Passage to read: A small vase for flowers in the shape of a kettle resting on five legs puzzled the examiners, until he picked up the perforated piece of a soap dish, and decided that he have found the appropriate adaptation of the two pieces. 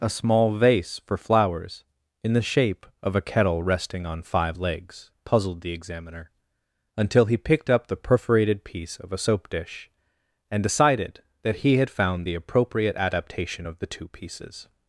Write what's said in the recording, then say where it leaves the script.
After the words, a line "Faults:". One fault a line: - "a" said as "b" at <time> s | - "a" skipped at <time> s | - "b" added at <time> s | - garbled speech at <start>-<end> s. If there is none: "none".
A small vase for flowers in the shape of a kettle resting on five legs puzzled the examiner, until he picked up the perforated piece of a soap dish, and decided that he had found the appropriate adaptation of the two pieces.
Faults:
- "examiners" said as "examiner" at 5.7 s
- "have" said as "had" at 11.8 s